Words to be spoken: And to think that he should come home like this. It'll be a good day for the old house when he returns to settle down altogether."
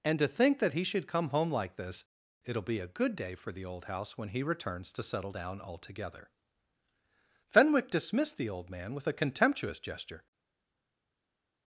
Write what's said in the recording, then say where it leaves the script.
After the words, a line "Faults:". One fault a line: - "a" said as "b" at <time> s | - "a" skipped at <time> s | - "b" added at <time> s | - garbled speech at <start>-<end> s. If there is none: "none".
And to think that he should come home like this. It'll be a good day for the old house when he returns to settle down altogether." Fenwick dismissed the old man with a contemptuous gesture
Faults:
- "Fenwick dismissed the old man with a contemptuous gesture" added at 7.5 s